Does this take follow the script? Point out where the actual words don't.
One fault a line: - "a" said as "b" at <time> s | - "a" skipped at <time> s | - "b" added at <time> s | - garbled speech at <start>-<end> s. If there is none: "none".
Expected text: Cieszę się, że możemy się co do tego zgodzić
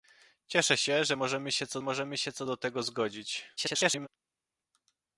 - "możemy się co" added at 1.8 s
- garbled speech at 3.6-4.1 s